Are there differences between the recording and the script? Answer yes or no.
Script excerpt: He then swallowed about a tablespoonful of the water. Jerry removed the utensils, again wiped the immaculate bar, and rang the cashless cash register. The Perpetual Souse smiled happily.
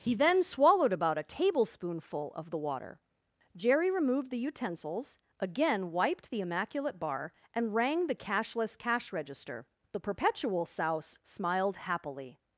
no